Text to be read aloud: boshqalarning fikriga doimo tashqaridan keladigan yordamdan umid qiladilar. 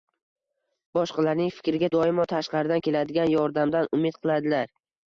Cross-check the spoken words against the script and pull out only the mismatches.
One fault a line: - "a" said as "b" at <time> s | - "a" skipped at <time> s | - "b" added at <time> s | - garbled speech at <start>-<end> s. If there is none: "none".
none